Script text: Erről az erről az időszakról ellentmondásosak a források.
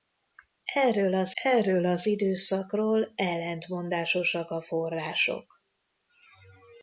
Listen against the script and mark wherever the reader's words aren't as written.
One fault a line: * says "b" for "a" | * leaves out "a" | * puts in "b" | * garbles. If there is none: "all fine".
all fine